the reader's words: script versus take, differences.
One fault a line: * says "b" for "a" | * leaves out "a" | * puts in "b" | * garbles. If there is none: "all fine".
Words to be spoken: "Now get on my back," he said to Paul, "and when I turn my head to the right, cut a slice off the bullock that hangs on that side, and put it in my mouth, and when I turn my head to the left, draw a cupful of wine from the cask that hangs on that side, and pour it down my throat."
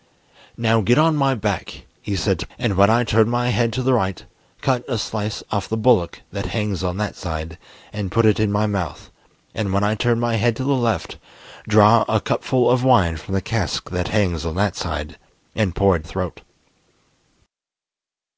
* leaves out "Paul"
* leaves out "down my"